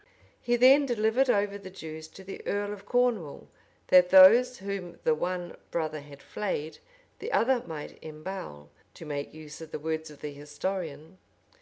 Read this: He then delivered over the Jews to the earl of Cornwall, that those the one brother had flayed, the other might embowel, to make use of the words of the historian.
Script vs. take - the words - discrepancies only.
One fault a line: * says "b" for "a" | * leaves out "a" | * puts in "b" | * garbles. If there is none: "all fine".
* puts in "whom"